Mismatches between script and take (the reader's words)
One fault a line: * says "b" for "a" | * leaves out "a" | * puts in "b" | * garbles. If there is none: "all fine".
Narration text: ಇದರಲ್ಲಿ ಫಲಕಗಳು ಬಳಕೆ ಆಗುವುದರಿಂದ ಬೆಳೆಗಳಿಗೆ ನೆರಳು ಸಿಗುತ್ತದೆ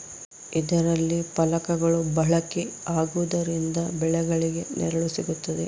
all fine